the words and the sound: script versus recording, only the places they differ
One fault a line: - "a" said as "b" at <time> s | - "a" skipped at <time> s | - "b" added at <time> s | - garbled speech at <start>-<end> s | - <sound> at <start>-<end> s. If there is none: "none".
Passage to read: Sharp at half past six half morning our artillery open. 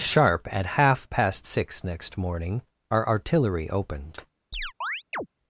- "half" said as "next" at 1.8 s
- "open" said as "opened" at 3.7 s
- chirp at 4.5-5.3 s